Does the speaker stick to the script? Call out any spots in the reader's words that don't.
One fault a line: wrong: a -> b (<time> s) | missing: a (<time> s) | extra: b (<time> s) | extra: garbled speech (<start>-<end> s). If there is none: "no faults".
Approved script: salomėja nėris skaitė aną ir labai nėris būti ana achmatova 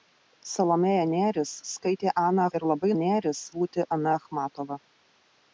no faults